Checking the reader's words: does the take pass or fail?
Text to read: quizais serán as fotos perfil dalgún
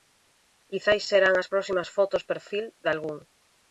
fail